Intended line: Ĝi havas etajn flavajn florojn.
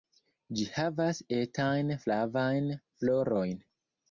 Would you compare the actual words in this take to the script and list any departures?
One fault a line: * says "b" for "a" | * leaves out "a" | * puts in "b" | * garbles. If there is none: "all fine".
all fine